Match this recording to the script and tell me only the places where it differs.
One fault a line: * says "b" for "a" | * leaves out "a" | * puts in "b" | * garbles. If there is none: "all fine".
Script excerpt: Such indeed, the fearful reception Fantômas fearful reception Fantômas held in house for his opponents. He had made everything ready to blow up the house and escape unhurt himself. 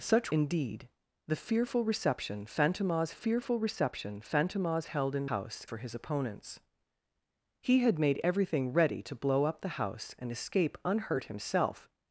all fine